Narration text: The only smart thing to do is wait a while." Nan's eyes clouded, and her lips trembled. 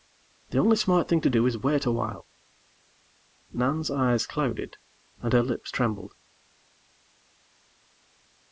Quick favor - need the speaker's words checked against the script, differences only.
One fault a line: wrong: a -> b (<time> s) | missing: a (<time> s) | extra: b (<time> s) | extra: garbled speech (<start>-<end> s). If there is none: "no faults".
no faults